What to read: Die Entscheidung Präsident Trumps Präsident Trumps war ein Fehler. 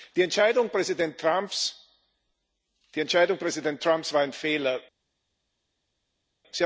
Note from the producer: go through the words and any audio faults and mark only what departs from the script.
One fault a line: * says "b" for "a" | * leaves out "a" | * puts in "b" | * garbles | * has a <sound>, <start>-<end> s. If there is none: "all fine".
* leaves out "Präsident Trumps"